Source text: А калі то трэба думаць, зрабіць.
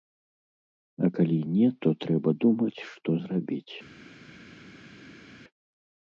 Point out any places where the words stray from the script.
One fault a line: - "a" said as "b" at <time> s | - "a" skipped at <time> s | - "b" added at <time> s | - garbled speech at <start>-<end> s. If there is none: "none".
- "не" added at 1.5 s
- "што" added at 2.9 s